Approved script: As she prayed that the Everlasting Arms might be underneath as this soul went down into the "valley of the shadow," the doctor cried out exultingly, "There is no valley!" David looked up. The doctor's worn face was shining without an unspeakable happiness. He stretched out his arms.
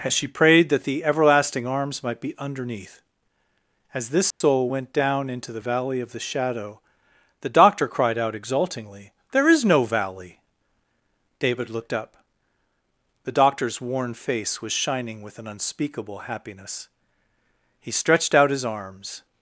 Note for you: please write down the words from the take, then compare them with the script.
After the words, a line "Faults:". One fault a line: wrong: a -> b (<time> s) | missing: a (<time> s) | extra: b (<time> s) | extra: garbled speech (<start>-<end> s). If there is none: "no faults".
As she prayed that the Everlasting Arms might be underneath as this soul went down into the "valley of the shadow," the doctor cried out exultingly, "There is no valley!" David looked up. The doctor's worn face was shining with an unspeakable happiness. He stretched out his arms.
Faults:
wrong: without -> with (15.2 s)